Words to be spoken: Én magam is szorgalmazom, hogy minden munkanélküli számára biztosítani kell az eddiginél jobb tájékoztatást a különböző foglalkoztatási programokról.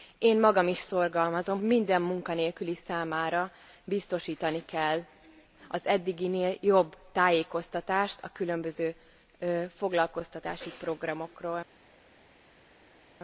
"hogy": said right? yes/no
no